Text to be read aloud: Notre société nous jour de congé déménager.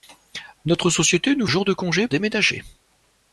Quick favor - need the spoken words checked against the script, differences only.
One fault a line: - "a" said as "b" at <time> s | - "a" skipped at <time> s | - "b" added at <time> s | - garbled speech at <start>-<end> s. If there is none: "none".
none